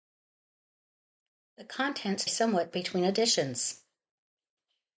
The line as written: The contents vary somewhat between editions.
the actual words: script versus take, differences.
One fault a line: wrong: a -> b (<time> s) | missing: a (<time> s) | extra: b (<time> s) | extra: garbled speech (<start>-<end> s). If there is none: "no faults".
missing: vary (2.2 s)